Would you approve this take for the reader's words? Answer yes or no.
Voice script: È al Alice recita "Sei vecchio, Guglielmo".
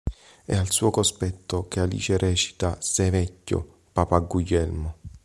no